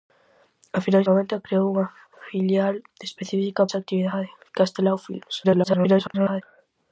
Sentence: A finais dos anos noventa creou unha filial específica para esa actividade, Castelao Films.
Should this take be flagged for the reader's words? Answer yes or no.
yes